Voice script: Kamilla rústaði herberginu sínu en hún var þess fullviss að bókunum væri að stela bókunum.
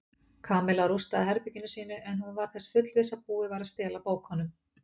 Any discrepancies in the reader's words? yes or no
yes